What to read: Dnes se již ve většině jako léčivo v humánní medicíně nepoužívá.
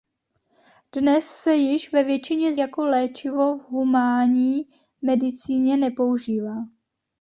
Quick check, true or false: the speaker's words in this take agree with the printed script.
true